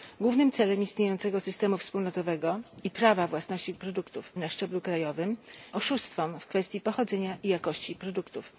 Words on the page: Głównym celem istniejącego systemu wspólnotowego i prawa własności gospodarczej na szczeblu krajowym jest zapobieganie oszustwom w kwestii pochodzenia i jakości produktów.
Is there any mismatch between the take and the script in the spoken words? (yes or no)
yes